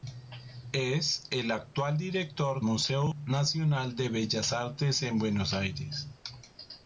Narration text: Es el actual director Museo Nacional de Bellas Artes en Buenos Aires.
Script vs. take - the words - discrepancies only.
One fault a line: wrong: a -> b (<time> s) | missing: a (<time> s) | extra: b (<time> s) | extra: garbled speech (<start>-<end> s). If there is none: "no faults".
no faults